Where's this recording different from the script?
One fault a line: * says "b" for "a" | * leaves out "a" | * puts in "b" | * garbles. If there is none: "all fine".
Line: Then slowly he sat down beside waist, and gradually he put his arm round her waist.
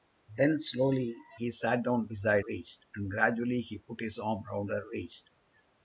all fine